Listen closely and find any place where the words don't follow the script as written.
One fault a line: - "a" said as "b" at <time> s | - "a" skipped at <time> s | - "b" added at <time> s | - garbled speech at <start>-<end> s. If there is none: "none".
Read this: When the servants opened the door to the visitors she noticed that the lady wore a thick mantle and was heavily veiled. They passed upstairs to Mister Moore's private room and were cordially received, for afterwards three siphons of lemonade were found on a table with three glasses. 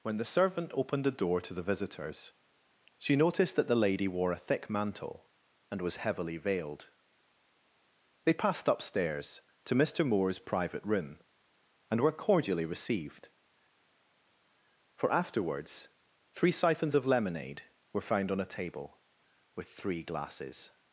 - "servants" said as "servant" at 0.2 s